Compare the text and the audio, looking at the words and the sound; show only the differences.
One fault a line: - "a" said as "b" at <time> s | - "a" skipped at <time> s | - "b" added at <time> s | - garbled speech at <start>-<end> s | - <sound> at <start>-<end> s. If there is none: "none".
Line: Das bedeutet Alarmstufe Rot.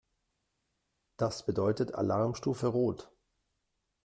none